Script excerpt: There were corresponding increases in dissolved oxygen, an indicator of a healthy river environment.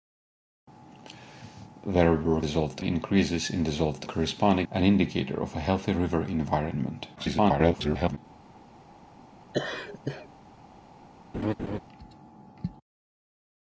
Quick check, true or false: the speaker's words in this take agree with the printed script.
false